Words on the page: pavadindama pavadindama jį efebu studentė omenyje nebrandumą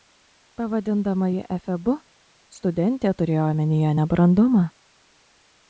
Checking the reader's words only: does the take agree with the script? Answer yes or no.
no